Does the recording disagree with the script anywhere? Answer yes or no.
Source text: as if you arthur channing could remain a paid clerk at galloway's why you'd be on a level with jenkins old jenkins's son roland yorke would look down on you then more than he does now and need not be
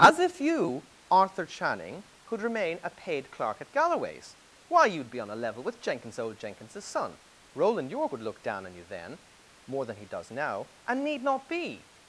no